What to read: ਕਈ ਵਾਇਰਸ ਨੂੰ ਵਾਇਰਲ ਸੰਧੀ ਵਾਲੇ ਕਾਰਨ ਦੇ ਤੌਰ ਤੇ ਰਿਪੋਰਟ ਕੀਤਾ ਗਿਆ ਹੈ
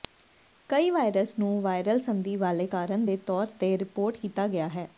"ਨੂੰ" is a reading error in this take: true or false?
false